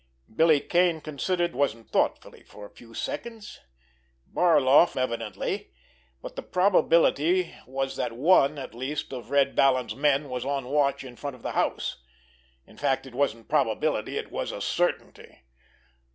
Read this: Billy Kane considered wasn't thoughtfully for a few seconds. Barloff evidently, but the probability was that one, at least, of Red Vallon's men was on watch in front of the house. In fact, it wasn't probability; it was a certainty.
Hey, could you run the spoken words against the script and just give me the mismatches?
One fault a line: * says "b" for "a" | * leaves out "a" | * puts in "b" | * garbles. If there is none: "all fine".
all fine